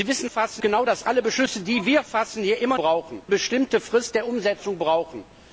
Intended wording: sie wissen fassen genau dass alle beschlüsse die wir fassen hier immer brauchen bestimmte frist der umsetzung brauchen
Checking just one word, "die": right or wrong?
right